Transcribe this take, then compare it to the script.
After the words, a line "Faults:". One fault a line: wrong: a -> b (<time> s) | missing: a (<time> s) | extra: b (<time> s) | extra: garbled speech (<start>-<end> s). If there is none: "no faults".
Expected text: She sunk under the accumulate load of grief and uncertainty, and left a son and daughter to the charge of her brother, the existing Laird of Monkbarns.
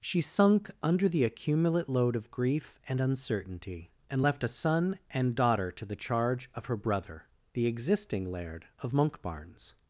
She sunk under the accumulate load of grief and uncertainty, and left a son and daughter to the charge of her brother, the existing Laird of Monkbarns.
Faults:
no faults